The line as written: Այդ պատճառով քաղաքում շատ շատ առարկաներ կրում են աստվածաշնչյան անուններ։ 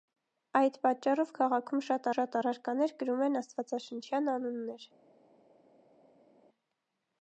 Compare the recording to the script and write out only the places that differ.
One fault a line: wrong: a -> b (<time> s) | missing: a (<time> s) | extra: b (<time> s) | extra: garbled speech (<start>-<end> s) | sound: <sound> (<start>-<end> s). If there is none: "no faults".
no faults